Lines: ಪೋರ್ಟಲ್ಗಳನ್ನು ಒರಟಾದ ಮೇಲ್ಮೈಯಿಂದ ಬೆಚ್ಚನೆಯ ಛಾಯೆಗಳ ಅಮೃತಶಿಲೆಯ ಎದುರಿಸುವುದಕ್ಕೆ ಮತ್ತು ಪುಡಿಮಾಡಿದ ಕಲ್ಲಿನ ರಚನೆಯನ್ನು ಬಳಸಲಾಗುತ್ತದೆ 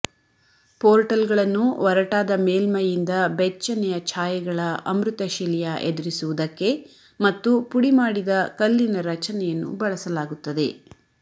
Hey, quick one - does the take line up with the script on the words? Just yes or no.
yes